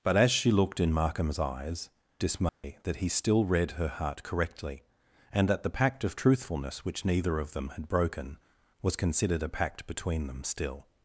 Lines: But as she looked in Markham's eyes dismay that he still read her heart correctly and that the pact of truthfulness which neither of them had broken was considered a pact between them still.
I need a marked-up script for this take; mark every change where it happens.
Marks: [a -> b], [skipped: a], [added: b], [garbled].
But as she looked in Markham's eyes dismay that he still read her heart correctly and that the pact of truthfulness which neither of them had broken was considered a pact between them still.